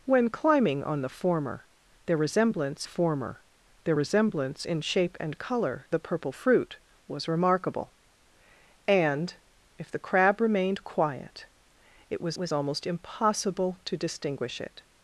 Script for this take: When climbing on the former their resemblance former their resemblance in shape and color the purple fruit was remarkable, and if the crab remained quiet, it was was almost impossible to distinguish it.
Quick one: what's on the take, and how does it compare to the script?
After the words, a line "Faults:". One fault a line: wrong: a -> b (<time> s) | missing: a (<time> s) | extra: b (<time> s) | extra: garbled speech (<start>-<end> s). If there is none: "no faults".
When climbing on the former their resemblance former their resemblance in shape and color the purple fruit was remarkable, and if the crab remained quiet, it was was almost impossible to distinguish it.
Faults:
no faults